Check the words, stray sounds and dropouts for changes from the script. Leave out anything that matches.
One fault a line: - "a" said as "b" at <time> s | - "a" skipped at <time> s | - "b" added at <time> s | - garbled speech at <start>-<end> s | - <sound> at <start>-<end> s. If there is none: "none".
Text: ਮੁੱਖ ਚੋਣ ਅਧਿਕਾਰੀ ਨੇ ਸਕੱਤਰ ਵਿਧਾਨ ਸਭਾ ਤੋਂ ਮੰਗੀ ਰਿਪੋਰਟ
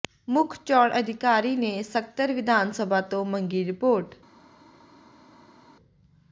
none